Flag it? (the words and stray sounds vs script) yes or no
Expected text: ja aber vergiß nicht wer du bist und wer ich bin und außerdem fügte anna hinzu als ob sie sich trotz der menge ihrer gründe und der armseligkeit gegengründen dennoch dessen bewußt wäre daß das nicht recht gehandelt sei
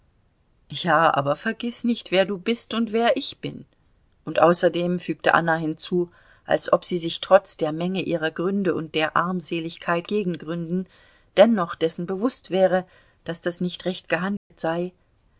yes